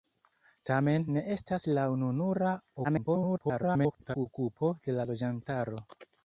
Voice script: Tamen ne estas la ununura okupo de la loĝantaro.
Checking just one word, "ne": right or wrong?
right